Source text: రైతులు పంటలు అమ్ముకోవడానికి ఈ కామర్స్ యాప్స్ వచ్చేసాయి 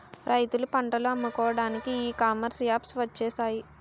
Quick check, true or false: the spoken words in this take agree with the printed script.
true